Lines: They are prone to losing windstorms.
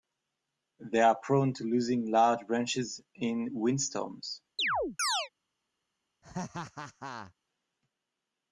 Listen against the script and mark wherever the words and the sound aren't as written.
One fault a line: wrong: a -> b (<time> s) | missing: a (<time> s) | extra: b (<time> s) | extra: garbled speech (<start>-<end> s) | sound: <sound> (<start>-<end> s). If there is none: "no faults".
extra: large branches in (2.1 s)
sound: chirp (4.6-5.3 s)
sound: laugh (6.2-7.3 s)